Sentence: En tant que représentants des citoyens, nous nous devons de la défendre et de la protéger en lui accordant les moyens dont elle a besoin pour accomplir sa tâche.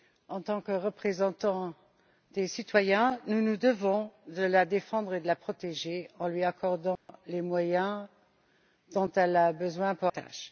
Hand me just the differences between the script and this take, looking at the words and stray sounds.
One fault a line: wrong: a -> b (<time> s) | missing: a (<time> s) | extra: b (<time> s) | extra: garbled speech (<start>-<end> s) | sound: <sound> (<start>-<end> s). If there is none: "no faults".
sound: dropout (7.0-7.1 s)
missing: accomplir sa (10.1 s)